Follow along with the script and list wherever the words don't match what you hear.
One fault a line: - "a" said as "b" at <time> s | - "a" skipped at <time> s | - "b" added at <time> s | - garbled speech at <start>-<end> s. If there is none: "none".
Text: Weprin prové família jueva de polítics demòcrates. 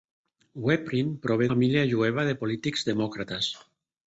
none